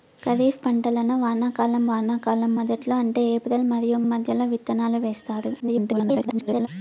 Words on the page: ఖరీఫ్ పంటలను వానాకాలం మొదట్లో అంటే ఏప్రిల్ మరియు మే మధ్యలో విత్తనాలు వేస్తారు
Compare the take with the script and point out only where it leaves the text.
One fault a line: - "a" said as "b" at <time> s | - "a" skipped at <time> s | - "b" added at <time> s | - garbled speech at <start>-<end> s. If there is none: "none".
- "వానాకాలం" added at 1.9 s
- "మే" skipped at 4.0 s
- garbled speech at 5.6-6.7 s